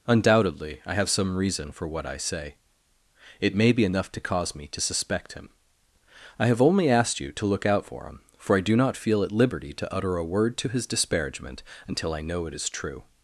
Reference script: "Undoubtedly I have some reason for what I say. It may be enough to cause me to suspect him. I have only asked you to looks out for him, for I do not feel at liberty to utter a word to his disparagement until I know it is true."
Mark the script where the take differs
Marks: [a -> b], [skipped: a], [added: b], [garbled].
"Undoubtedly I have some reason for what I say. It may be enough to cause me to suspect him. I have only asked you to [looks -> look] out for him, for I do not feel at liberty to utter a word to his disparagement until I know it is true."